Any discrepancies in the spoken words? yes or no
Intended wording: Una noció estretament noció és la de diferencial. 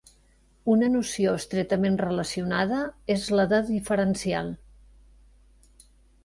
yes